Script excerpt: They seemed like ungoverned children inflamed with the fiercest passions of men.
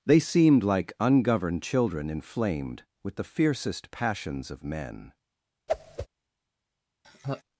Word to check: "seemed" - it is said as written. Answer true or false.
true